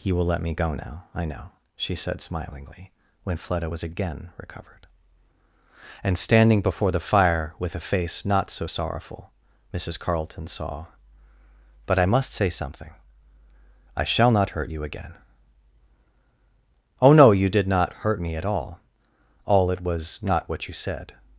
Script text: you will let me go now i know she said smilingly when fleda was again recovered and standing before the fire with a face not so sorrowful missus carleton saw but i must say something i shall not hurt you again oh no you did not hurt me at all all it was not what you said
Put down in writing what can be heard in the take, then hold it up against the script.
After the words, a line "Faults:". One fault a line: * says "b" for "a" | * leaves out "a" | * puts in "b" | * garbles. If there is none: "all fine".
you will let me go now i know she said smilingly when fleda was again recovered and standing before the fire with a face not so sorrowful missus carleton saw but i must say something i shall not hurt you again oh no you did not hurt me at all all it was not what you said
Faults:
all fine